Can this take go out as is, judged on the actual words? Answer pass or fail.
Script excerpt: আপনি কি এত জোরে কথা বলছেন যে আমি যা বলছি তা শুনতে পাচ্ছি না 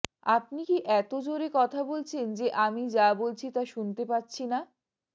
pass